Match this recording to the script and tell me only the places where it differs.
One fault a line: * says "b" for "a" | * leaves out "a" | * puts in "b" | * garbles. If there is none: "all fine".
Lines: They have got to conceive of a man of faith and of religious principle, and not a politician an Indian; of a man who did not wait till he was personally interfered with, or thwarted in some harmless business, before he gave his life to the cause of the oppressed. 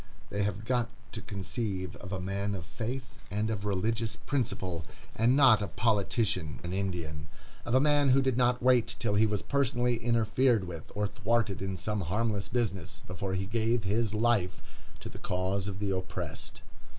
all fine